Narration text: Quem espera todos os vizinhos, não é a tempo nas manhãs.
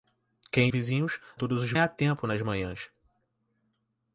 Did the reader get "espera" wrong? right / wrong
wrong